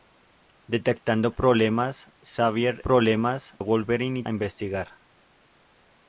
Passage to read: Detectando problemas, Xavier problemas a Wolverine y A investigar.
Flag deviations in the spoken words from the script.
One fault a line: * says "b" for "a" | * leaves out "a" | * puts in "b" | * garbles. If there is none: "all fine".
all fine